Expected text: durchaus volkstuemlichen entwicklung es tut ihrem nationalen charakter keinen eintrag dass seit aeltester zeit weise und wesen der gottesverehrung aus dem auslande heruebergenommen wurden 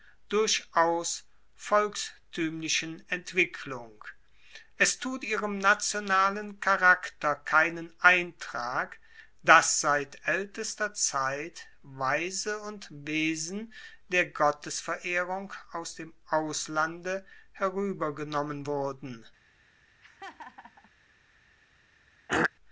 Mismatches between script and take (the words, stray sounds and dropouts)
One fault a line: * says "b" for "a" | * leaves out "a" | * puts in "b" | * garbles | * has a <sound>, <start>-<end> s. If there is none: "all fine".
* has a laugh, 20.0-20.9 s
* has a throat clearing, 22.3-22.5 s